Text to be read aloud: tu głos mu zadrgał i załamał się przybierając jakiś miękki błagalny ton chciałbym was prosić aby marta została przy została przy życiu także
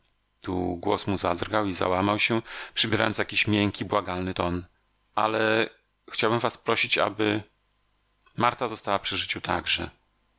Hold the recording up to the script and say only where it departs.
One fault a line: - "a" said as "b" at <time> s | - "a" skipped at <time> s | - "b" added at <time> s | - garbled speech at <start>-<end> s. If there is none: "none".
- "ale" added at 5.1 s
- "została przy" skipped at 9.2 s